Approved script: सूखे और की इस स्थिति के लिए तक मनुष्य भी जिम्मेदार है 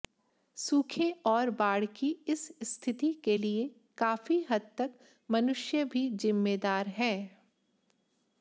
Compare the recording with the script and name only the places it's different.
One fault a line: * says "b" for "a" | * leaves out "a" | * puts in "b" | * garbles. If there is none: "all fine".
* puts in "बाढ़"
* puts in "काफी हद"